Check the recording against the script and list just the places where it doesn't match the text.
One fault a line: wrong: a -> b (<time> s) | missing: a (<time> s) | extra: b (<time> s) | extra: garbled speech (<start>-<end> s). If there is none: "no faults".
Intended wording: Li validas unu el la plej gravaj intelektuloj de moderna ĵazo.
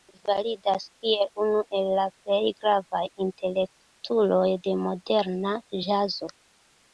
extra: kiel (1.0 s)